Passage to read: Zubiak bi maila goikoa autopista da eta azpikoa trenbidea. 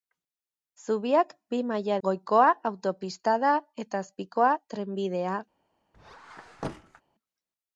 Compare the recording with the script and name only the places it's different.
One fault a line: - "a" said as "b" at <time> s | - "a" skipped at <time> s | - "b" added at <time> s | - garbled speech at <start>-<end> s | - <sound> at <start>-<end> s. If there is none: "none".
- squeak at 5.9-7.0 s